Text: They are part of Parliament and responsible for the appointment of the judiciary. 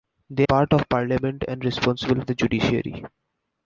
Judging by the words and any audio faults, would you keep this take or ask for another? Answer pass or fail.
fail